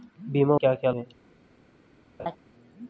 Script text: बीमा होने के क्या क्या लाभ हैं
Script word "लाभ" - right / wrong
wrong